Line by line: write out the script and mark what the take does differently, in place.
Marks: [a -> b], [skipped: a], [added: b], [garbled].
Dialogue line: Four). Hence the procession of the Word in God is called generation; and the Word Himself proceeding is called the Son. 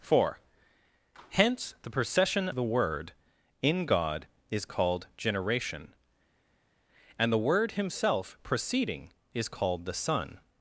Four). Hence the procession [skipped: of] the Word in God is called generation; and the Word Himself proceeding is called the Son.